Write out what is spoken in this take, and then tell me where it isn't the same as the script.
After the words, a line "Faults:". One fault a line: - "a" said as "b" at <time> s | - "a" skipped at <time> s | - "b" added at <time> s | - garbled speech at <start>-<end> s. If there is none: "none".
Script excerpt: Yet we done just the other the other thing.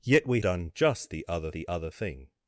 Yet we done just the other the other thing.
Faults:
none